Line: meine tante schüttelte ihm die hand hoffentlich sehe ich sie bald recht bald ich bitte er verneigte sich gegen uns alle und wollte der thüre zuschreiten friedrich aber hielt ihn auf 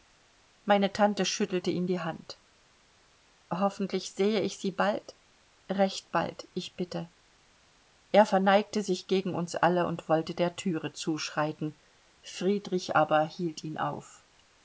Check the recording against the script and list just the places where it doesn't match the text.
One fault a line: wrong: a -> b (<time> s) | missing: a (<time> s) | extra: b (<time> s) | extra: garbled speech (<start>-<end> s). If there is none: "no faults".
no faults